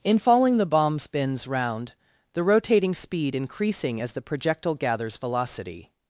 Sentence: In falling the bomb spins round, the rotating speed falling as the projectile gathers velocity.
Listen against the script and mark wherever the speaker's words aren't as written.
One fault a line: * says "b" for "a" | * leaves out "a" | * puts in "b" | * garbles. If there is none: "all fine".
* says "increasing" for "falling"